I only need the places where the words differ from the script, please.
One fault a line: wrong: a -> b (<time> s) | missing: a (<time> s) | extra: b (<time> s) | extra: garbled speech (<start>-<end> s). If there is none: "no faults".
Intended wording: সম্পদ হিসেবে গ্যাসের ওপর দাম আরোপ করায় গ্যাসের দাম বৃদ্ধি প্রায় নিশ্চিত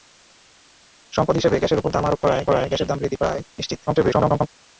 extra: করায় (2.5 s)
extra: garbled speech (3.9-4.5 s)